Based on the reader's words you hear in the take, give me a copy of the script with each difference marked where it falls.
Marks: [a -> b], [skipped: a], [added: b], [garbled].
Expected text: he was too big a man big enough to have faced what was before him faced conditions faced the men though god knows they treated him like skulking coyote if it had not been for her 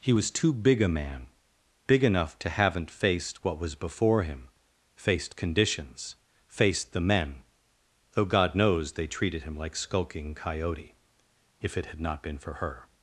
he was too big a man big enough to [have -> haven't] faced what was before him faced conditions faced the men though god knows they treated him like skulking coyote if it had not been for her